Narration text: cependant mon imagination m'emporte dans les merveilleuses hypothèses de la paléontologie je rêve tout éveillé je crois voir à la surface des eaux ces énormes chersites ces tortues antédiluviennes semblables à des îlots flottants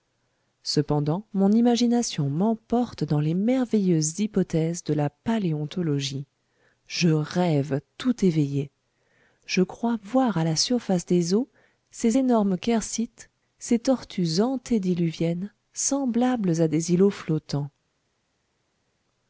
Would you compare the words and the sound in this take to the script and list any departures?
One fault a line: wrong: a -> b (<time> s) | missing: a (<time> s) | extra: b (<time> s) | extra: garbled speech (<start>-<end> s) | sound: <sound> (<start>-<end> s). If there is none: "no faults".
no faults